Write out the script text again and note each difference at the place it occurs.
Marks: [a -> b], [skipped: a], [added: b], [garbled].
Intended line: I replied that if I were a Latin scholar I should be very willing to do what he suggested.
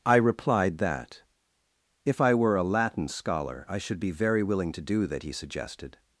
I replied that if I were a Latin scholar I should be very willing to do [what -> that] he suggested.